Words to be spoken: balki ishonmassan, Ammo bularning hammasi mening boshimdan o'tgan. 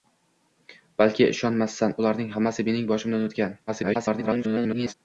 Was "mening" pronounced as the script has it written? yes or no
yes